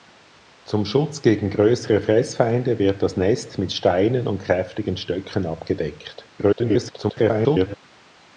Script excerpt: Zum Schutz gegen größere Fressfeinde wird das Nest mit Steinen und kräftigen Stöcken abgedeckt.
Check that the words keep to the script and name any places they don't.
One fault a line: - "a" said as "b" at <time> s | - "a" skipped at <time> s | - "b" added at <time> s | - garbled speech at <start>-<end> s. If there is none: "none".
- garbled speech at 6.4-7.7 s